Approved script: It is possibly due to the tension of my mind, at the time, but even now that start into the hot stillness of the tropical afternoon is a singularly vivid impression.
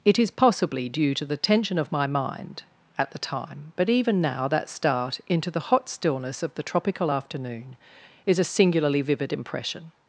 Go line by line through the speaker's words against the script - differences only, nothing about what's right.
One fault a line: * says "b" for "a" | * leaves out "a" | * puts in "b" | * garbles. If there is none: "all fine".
all fine